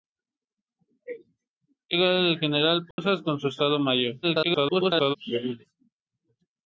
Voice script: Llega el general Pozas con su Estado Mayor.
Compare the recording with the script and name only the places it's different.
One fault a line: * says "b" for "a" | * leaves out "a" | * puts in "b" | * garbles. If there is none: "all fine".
* garbles